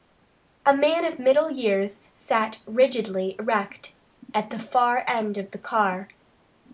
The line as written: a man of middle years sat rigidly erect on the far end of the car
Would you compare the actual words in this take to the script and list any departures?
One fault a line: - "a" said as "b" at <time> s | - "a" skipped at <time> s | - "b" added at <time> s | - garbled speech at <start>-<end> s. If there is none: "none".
- "on" said as "at" at 4.3 s